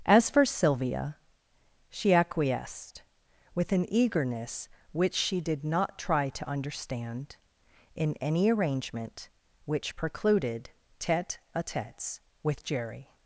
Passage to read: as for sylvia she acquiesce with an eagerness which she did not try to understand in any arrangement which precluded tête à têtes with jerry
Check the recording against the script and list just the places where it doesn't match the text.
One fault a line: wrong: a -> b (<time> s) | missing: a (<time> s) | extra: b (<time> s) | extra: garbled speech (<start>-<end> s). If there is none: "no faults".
wrong: acquiesce -> acquiesced (2.1 s)